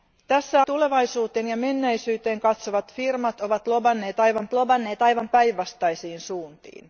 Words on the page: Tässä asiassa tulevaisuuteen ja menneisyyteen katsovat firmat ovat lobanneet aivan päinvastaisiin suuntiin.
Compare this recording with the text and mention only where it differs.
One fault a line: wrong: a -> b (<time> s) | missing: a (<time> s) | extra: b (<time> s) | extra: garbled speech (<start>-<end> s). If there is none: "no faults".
missing: asiassa (0.7 s)
extra: lobanneet aivan (4.5 s)